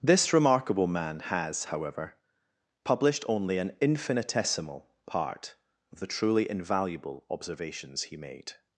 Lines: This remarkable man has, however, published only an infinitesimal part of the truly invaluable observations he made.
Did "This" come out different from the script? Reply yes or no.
no